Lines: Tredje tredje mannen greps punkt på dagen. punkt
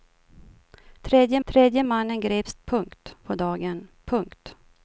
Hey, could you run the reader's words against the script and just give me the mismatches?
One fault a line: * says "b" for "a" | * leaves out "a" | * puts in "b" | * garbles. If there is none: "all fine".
all fine